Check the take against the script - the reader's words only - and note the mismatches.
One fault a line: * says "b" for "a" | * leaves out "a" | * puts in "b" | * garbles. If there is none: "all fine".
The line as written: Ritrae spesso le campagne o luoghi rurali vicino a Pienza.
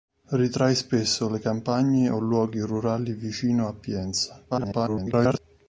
* garbles